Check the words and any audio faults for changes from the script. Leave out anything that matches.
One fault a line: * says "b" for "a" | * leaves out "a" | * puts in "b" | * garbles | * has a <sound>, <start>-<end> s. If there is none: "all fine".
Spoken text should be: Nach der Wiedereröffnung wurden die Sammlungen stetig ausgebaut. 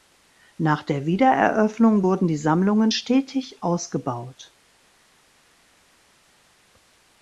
all fine